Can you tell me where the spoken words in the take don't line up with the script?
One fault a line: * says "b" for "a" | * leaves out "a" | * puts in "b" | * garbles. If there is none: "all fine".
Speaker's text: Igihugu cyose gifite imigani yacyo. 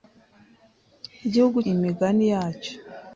* leaves out "cyose gifite"